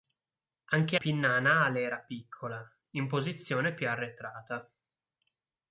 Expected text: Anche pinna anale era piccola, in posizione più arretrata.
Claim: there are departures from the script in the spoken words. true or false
false